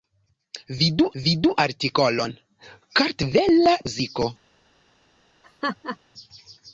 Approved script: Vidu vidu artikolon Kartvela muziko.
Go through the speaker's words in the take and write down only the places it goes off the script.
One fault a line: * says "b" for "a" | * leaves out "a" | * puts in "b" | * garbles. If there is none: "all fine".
all fine